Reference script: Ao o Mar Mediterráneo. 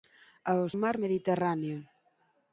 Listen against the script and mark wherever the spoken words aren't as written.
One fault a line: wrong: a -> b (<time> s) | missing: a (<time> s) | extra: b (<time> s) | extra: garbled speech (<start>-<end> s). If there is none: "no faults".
no faults